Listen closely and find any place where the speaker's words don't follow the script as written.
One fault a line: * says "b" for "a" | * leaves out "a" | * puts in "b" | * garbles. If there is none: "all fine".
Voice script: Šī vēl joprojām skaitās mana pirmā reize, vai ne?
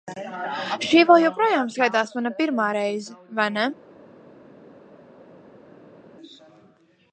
all fine